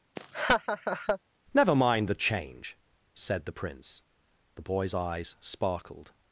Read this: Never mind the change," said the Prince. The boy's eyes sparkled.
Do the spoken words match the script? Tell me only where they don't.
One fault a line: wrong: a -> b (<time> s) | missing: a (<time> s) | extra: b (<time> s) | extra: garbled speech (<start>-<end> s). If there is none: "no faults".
no faults